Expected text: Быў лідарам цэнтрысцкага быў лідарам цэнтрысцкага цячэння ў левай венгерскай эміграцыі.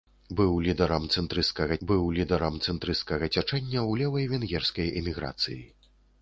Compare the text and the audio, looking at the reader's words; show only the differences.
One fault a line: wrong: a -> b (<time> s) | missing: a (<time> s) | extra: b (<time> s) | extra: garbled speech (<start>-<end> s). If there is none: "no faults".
no faults